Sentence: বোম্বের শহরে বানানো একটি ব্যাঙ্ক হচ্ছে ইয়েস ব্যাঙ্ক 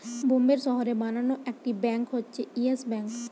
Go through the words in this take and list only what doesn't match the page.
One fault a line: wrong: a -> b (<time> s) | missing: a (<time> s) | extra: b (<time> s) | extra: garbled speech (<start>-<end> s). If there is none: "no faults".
no faults